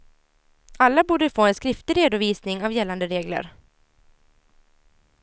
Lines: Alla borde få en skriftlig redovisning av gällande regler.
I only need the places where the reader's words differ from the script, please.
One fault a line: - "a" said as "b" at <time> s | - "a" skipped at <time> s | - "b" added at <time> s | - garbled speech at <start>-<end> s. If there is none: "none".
none